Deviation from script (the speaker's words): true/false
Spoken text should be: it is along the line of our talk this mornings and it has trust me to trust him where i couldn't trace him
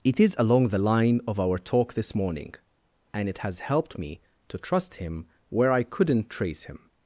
true